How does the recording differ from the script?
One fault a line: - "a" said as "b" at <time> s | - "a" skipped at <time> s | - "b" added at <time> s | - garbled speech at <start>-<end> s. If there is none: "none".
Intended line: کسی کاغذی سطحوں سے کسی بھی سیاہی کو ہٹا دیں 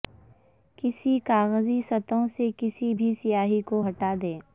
none